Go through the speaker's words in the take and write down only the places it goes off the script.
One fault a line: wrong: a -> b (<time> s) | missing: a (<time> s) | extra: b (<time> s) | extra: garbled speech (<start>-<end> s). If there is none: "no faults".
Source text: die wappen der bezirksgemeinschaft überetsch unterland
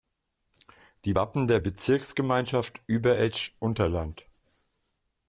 no faults